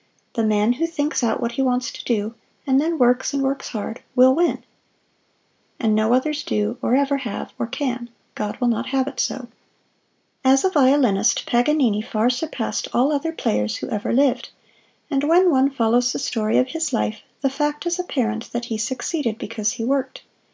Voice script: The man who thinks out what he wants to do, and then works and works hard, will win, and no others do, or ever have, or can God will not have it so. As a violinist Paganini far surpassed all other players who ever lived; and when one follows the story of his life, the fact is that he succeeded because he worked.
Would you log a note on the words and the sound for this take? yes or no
yes